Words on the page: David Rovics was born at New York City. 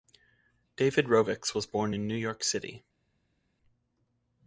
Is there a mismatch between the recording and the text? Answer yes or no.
yes